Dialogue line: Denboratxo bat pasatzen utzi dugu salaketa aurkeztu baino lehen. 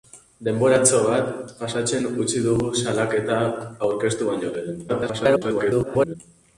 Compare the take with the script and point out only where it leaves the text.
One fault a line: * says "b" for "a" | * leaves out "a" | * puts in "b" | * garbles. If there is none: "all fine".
* garbles